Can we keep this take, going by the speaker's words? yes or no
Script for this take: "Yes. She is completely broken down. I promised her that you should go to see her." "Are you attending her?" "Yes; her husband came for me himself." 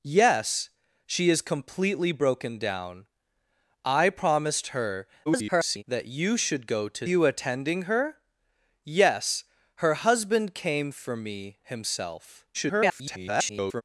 no